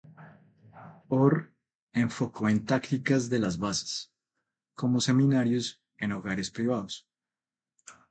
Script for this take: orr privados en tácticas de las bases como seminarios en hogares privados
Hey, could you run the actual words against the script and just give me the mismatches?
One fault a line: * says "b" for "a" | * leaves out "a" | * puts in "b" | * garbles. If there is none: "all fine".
* says "enfocó" for "privados"